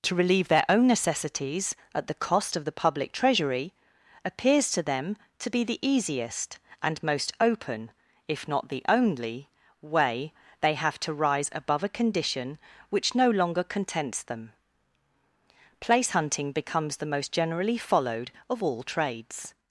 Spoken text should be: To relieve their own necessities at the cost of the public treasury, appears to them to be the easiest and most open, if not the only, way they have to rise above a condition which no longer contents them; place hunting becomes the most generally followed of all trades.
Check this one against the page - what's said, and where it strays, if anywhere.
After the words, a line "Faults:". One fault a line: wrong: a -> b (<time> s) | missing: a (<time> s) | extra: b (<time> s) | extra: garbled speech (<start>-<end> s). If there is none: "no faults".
To relieve their own necessities at the cost of the public treasury, appears to them to be the easiest and most open, if not the only, way they have to rise above a condition which no longer contents them; place hunting becomes the most generally followed of all trades.
Faults:
no faults